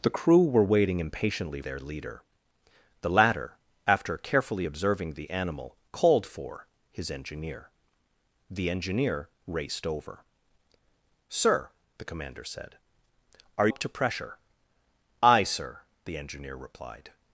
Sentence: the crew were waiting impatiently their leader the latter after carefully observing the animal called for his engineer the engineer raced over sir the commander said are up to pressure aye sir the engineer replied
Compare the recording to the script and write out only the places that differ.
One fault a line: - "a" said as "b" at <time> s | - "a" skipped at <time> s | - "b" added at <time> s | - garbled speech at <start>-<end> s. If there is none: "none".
none